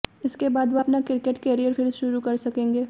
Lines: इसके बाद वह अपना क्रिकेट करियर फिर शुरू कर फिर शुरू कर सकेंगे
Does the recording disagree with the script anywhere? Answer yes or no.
yes